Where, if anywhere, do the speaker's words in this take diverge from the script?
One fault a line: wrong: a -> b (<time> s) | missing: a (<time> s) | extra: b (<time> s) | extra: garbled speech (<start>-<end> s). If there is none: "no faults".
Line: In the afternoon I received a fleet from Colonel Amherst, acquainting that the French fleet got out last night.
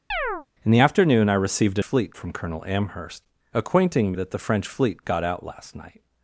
no faults